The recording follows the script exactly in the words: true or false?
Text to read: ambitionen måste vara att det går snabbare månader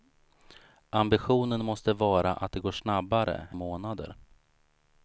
true